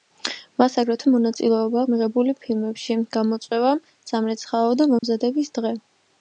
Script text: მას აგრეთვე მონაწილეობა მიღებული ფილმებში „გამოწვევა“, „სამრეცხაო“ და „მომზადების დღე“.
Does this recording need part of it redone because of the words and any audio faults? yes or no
yes